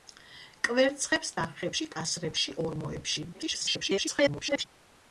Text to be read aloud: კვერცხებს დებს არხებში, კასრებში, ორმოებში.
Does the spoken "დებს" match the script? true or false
false